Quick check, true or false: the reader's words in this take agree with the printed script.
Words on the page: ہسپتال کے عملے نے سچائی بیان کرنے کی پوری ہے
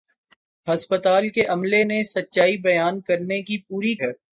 true